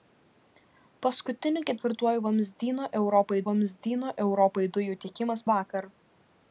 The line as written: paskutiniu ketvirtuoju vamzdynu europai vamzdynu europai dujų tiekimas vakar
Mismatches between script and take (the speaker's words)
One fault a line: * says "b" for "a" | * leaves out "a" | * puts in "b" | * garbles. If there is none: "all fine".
all fine